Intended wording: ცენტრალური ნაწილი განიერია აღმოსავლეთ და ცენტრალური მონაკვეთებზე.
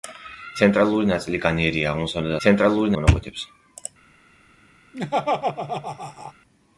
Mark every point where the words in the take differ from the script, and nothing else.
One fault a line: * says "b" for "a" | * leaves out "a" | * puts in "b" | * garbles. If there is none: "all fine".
all fine